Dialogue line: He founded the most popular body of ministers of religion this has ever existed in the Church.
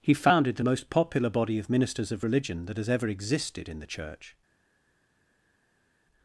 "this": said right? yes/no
no